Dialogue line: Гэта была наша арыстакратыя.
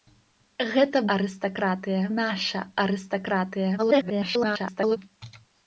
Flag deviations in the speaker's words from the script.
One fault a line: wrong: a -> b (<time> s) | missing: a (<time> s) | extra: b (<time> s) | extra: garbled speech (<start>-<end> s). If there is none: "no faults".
wrong: была -> арыстакратыя (1.2 s)
extra: garbled speech (3.8-5.0 s)